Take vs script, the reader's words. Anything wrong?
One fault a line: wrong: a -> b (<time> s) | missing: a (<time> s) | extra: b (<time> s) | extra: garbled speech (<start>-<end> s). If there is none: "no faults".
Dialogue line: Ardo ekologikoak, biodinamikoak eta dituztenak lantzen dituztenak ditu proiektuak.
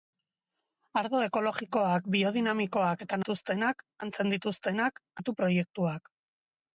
no faults